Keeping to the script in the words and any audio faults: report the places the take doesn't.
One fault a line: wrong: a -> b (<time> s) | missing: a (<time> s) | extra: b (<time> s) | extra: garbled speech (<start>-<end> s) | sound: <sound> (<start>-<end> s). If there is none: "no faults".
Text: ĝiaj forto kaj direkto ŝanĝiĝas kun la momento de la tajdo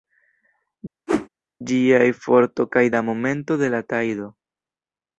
sound: whoosh (1.1-1.3 s)
missing: direkto ŝanĝiĝas kun (2.8 s)